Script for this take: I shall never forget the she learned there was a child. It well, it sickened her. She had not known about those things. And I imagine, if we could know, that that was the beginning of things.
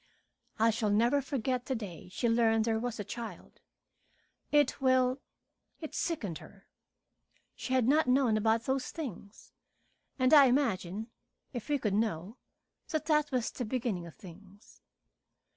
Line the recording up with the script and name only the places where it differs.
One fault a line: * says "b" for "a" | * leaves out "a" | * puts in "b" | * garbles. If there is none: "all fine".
* puts in "day"